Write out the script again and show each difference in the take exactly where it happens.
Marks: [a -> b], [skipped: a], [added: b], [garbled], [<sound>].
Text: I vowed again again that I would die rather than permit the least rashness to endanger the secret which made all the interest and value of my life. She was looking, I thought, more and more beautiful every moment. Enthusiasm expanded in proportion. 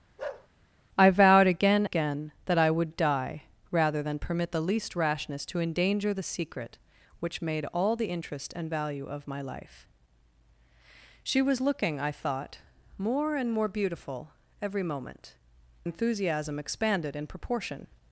[bark] I vowed again again that I would die rather than permit the least rashness to endanger the secret which made all the interest and value of my life. She was looking, I thought, more and more beautiful every moment. Enthusiasm expanded in proportion.